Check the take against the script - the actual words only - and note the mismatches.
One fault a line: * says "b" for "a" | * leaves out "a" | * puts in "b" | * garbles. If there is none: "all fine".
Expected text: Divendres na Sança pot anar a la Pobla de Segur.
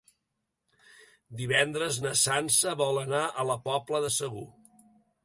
* says "vol" for "pot"